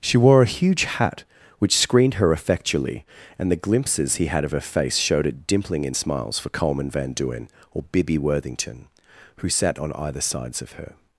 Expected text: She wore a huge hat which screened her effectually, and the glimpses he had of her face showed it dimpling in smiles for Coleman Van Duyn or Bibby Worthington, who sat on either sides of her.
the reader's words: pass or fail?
pass